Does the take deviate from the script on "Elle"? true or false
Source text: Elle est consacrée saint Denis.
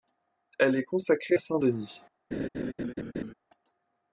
false